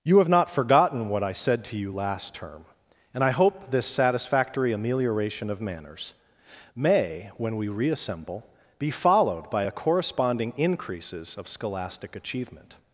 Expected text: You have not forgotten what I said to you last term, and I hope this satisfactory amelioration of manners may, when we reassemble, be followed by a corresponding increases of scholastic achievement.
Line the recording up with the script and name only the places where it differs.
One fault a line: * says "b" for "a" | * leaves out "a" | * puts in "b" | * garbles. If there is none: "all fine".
all fine